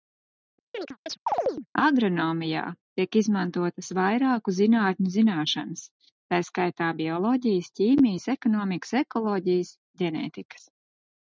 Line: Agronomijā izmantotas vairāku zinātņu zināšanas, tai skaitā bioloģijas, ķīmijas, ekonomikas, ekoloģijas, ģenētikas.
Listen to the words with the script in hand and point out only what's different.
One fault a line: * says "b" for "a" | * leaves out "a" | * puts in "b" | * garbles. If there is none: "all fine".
* puts in "tiek"